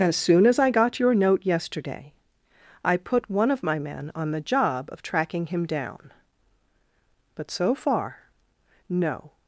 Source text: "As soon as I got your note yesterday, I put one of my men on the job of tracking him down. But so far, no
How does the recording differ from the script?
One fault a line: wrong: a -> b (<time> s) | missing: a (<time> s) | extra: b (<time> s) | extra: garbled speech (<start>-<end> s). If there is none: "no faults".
no faults